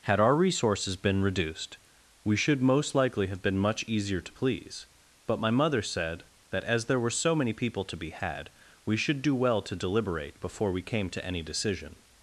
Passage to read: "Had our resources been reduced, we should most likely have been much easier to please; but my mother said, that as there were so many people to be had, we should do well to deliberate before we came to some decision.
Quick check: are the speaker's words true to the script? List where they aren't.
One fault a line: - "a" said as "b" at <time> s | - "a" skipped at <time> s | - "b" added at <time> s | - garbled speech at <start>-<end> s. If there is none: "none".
- "some" said as "any" at 11.2 s